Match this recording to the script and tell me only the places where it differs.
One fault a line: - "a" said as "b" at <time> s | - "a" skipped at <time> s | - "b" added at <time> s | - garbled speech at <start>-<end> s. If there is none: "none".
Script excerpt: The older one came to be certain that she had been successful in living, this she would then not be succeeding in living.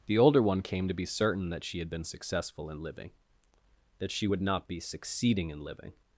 - "this" said as "that" at 4.0 s
- "then" skipped at 4.4 s